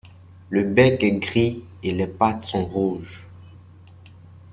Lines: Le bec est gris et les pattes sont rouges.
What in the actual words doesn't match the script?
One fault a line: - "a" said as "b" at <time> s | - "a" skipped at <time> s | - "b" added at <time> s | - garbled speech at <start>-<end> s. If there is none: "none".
none